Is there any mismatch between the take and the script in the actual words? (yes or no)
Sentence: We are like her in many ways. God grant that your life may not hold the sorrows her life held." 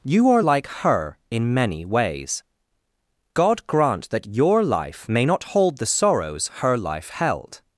yes